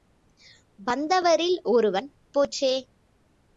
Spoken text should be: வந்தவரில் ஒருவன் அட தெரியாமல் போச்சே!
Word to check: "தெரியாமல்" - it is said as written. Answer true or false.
false